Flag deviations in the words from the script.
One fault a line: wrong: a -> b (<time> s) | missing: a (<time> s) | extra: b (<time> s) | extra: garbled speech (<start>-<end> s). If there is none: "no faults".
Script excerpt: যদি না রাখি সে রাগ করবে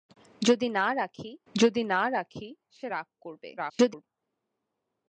extra: যদি না রাখি (1.5 s)
extra: garbled speech (3.6-4.0 s)